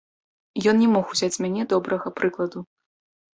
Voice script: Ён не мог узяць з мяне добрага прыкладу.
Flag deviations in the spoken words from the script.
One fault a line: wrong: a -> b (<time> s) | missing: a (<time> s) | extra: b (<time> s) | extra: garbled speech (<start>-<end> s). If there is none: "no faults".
no faults